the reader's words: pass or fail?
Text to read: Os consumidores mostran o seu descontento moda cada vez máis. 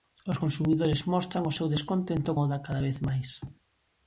pass